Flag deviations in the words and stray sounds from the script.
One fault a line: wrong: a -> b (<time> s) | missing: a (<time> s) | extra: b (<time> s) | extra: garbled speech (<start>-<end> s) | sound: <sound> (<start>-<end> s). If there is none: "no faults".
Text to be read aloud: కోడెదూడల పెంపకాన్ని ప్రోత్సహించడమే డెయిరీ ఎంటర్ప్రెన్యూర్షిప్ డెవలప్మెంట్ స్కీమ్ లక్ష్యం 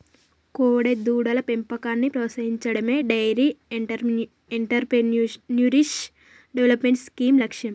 no faults